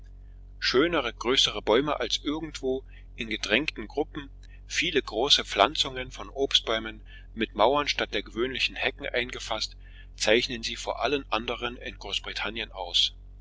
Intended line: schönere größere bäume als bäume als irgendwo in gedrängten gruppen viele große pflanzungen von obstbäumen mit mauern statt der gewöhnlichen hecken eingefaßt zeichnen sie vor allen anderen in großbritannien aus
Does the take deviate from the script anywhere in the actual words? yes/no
yes